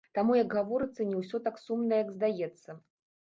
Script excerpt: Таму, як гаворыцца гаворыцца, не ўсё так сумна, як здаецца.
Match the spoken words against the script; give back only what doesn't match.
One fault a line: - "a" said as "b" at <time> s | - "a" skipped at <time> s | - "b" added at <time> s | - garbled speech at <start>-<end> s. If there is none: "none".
- "гаворыцца" skipped at 1.1 s